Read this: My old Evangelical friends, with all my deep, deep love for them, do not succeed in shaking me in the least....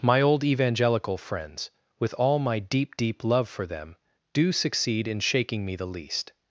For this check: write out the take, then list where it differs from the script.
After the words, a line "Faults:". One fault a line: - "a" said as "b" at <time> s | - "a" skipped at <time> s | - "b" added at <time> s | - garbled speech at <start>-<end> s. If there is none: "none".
My old Evangelical friends, with all my deep, deep love for them, do succeed in shaking me the least....
Faults:
- "not" skipped at 4.5 s
- "in" skipped at 5.8 s